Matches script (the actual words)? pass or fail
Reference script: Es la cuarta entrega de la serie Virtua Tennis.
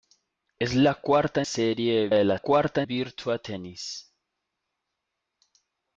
fail